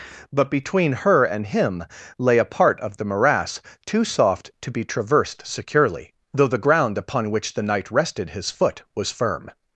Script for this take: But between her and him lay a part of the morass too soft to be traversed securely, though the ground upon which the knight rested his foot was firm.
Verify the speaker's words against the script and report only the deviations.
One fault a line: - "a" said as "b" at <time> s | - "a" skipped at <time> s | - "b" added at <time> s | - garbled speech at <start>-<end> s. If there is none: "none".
none